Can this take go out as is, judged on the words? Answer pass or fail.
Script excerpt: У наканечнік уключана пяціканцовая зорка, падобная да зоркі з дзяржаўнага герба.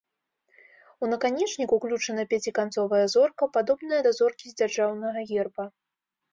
pass